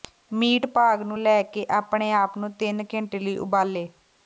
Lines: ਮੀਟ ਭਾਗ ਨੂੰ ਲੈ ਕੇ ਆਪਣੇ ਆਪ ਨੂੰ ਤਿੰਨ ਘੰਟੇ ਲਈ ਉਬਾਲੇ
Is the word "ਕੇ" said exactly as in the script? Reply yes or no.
yes